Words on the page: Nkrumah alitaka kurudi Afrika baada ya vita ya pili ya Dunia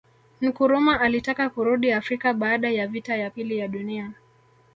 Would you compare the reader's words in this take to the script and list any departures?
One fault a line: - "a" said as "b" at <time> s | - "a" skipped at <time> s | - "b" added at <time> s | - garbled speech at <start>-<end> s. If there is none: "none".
none